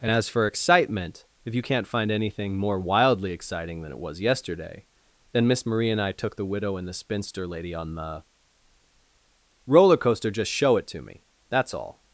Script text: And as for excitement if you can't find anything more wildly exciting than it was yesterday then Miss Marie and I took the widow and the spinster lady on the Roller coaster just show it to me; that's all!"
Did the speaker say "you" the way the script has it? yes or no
yes